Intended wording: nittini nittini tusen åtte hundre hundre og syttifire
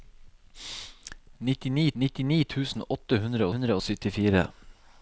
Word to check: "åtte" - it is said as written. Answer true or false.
true